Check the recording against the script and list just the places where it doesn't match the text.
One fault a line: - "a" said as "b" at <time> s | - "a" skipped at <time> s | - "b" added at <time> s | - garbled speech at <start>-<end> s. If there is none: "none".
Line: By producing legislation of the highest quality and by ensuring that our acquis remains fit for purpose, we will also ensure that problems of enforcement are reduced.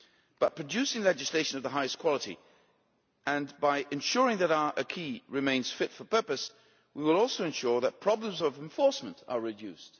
none